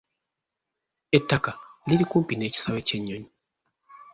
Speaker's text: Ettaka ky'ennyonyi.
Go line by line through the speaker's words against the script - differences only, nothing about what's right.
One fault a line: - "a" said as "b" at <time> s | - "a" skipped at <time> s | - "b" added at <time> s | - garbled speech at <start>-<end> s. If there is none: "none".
- "liri kumpi n'ekisaawe" added at 1.9 s